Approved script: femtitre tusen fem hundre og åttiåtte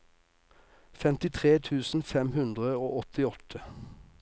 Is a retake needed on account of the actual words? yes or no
no